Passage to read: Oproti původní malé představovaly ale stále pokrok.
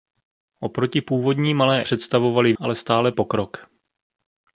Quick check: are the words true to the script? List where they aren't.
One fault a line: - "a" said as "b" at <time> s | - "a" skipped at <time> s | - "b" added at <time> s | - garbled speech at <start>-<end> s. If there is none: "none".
none